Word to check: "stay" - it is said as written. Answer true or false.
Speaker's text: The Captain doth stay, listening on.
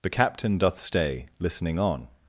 true